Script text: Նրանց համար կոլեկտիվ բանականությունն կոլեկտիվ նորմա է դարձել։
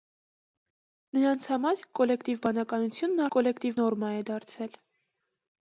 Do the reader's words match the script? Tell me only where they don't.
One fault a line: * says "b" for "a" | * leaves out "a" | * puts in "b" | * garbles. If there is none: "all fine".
all fine